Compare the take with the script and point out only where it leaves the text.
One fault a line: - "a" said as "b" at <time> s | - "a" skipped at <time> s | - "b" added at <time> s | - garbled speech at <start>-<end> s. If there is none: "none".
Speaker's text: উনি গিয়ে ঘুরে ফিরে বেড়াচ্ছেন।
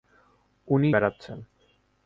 - "গিয়ে ঘুরে ফিরে" skipped at 0.9 s